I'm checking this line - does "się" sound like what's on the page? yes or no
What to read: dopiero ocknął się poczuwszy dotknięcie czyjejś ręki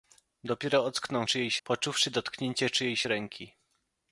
no